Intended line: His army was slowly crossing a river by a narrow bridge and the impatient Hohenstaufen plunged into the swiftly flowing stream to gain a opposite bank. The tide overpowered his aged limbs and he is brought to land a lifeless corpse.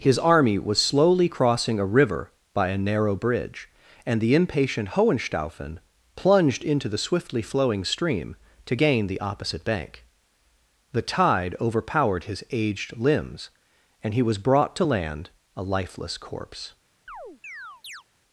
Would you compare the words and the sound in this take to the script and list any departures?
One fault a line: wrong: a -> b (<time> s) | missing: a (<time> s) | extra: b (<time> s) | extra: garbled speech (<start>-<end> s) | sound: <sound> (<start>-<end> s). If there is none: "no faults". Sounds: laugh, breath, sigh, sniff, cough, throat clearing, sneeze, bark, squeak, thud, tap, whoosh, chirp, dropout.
wrong: a -> the (9.1 s)
wrong: is -> was (14.2 s)
sound: chirp (17.1-18.0 s)